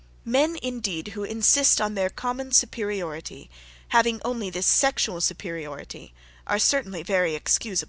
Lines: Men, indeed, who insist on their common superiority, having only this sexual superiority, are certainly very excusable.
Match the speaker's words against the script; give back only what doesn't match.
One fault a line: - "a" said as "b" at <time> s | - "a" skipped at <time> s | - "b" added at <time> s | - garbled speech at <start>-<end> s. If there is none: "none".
none